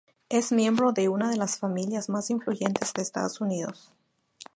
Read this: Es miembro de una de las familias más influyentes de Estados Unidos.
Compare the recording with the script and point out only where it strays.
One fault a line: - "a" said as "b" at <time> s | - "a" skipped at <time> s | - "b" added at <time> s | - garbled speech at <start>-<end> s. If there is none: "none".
none